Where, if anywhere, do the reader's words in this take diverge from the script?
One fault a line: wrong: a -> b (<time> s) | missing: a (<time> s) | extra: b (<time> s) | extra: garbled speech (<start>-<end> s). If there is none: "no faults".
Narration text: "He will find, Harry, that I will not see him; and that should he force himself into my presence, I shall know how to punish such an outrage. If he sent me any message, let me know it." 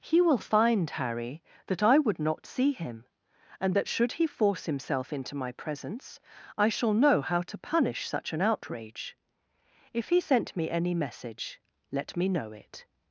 wrong: will -> would (2.0 s)